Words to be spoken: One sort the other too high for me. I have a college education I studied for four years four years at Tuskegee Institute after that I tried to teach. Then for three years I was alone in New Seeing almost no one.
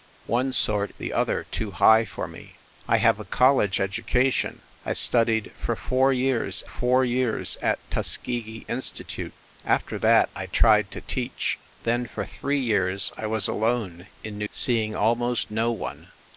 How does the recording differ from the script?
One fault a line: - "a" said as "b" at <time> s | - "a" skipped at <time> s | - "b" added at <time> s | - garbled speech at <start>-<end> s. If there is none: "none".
none